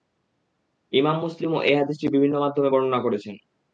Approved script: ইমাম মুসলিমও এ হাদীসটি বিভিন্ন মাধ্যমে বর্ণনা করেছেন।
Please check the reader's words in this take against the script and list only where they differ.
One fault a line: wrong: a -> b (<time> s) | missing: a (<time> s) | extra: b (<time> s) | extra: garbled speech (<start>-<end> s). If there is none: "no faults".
no faults